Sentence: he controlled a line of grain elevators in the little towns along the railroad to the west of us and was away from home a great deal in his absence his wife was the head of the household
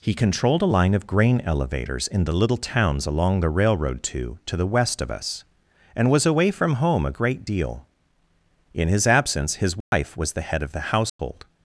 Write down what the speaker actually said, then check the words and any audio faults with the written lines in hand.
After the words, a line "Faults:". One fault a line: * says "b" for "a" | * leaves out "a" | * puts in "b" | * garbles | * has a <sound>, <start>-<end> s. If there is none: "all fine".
he controlled a line of grain elevators in the little towns along the railroad to to the west of us and was away from home a great deal in his absence his wife was the head of the household
Faults:
* puts in "to"
* has a dropout, 9.8-9.9 s
* has a dropout, 11.1-11.2 s